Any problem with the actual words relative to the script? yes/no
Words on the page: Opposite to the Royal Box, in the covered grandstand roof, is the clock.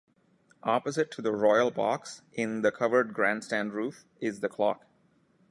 no